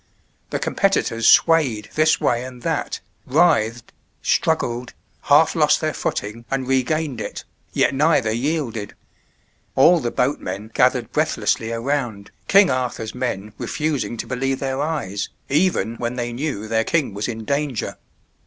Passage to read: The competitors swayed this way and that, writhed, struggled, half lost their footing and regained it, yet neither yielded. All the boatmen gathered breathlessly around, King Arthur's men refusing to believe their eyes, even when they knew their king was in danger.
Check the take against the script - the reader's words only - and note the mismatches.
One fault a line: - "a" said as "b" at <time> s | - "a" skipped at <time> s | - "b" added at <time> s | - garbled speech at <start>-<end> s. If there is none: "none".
none